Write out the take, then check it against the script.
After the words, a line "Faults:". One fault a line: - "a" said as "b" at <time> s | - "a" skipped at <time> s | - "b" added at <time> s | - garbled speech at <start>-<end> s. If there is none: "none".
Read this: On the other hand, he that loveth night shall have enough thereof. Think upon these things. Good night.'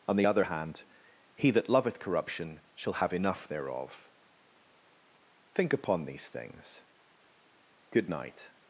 On the other hand, he that loveth corruption shall have enough thereof. Think upon these things. Good night.'
Faults:
- "night" said as "corruption" at 2.0 s